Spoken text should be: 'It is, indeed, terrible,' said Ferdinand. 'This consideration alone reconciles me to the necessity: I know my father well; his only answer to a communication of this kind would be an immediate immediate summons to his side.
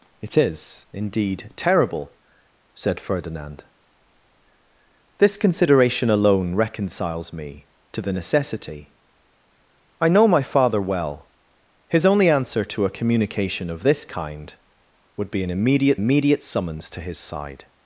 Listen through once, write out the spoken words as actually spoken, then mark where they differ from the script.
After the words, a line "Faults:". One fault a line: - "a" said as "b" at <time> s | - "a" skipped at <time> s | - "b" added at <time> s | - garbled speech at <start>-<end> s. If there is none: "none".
'It is, indeed, terrible,' said Ferdinand. 'This consideration alone reconciles me to the necessity: I know my father well; his only answer to a communication of this kind would be an immediate immediate summons to his side.
Faults:
none